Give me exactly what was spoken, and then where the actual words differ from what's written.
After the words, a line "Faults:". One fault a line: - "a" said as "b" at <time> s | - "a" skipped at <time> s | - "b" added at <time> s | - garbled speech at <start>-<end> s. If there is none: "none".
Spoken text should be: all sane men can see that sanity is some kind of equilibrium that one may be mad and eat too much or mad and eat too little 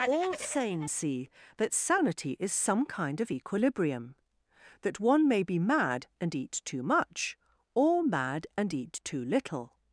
all sane see that sanity is some kind of equilibrium that one may be mad and eat too much or mad and eat too little
Faults:
- "men can" skipped at 0.9 s